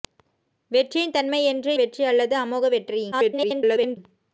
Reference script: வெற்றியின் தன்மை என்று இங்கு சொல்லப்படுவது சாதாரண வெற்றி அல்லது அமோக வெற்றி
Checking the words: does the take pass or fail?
fail